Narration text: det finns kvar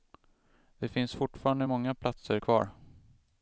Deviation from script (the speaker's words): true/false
true